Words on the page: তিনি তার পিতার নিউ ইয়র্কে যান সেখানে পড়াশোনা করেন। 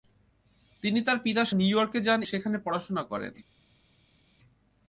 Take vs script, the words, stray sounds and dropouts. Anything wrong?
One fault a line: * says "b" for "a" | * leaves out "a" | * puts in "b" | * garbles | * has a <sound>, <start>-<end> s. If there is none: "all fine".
all fine